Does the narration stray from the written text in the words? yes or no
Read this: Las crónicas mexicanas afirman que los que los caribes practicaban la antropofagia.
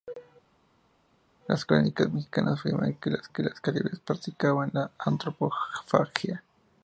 no